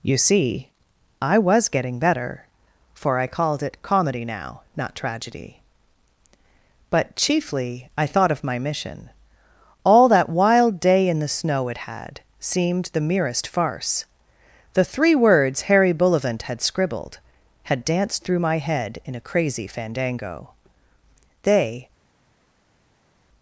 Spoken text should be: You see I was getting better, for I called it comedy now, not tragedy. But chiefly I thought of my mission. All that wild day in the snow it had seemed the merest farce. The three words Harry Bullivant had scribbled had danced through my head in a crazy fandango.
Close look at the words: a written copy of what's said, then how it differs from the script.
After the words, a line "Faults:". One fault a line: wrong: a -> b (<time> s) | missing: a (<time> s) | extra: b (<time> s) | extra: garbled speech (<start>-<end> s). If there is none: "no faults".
You see I was getting better, for I called it comedy now, not tragedy. But chiefly I thought of my mission. All that wild day in the snow it had seemed the merest farce. The three words Harry Bullivant had scribbled had danced through my head in a crazy fandango. They
Faults:
extra: They (21.4 s)